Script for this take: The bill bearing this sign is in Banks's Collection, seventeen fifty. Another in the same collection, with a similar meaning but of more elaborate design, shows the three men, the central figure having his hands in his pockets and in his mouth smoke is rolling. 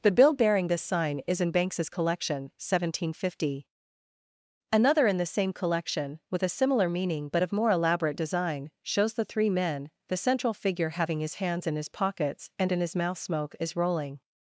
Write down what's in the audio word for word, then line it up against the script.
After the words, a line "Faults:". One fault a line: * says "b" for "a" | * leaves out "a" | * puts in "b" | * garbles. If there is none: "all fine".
The bill bearing this sign is in Banks's Collection, seventeen fifty. Another in the same collection, with a similar meaning but of more elaborate design, shows the three men, the central figure having his hands in his pockets and in his mouth smoke is rolling.
Faults:
all fine